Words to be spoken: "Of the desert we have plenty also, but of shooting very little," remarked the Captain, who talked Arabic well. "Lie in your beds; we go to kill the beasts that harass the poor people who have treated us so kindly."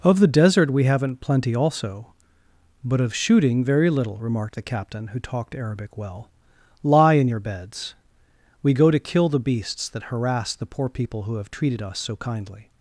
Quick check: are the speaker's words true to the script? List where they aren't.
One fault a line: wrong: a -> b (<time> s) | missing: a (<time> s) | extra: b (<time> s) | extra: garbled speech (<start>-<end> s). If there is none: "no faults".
wrong: have -> haven't (0.8 s)